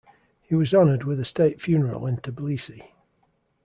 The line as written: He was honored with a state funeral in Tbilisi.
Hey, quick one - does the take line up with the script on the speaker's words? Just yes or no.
yes